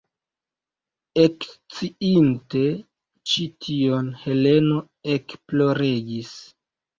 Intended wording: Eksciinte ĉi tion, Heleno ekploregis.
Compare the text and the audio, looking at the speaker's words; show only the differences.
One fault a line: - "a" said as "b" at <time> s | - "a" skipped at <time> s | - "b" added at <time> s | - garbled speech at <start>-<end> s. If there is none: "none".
none